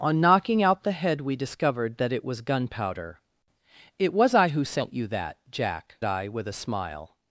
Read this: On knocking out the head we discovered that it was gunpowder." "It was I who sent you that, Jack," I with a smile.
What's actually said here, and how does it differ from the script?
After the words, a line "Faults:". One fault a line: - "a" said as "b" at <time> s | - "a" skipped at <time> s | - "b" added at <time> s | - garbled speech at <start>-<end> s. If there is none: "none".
On knocking out the head we discovered that it was gunpowder." "It was I who sent you that, Jack," I with a smile.
Faults:
none